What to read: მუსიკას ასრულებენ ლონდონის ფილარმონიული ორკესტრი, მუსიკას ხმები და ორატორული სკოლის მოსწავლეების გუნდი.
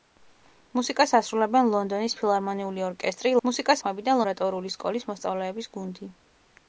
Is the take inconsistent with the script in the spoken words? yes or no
no